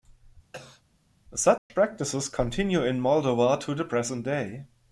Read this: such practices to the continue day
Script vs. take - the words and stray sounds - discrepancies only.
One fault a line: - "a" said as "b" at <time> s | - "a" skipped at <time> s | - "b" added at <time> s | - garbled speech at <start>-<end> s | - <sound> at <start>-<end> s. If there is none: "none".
- cough at 0.5-0.8 s
- dropout at 1.6-1.7 s
- "continue in moldova" added at 2.3 s
- "continue" said as "present" at 3.8 s